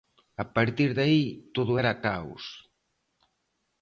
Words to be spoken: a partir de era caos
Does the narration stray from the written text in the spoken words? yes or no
yes